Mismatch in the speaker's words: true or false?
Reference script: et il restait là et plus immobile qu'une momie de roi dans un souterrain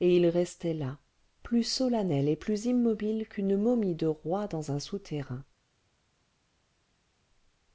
true